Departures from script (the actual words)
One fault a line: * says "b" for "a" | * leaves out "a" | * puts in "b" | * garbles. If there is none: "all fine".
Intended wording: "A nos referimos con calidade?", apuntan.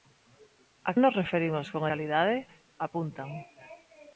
all fine